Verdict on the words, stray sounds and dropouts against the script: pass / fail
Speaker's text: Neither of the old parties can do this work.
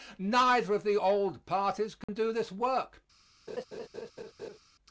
fail